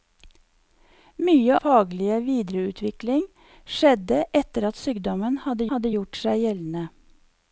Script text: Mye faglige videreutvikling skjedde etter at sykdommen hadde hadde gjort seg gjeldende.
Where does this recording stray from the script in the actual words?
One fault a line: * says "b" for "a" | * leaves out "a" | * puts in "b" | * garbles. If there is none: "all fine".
all fine